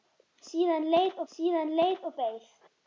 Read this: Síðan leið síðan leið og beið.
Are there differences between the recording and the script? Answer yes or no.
no